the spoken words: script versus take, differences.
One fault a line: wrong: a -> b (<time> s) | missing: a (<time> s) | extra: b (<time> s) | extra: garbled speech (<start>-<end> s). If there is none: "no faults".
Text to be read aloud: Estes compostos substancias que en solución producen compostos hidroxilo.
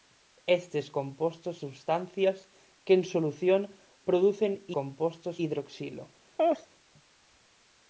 no faults